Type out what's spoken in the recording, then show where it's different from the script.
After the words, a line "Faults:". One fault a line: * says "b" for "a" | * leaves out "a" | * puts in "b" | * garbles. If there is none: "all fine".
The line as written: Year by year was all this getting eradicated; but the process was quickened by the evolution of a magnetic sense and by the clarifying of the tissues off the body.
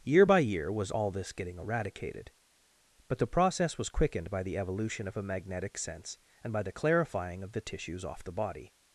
Year by year was all this getting eradicated; but the process was quickened by the evolution of a magnetic sense and by the clarifying of the tissues off the body.
Faults:
all fine